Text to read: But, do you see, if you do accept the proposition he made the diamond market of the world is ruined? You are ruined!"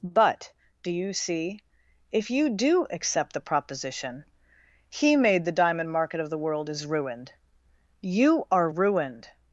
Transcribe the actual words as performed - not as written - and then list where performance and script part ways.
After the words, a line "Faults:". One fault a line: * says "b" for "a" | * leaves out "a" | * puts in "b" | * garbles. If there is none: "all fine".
But, do you see, if you do accept the proposition he made the diamond market of the world is ruined? You are ruined!"
Faults:
all fine